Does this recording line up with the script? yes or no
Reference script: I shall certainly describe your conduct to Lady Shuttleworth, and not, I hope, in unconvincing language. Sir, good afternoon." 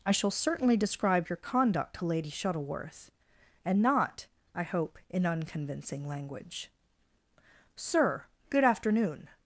yes